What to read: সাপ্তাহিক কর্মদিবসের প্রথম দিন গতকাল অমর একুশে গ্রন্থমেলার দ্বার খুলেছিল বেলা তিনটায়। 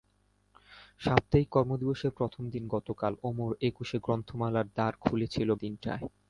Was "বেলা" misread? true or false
true